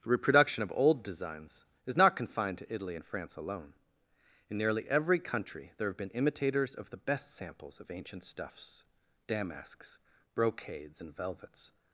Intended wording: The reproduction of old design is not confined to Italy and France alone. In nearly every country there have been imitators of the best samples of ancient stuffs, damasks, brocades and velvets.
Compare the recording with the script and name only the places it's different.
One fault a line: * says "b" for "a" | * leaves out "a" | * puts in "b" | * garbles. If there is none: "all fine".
* says "designs" for "design"